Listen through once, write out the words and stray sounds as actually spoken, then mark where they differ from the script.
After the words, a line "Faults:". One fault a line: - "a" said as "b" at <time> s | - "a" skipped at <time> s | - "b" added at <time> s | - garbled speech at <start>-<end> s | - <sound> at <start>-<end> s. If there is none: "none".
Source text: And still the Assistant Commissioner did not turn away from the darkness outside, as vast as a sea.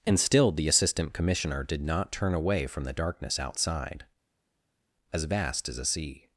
And still the Assistant Commissioner did not turn away from the darkness outside, as vast as a sea.
Faults:
none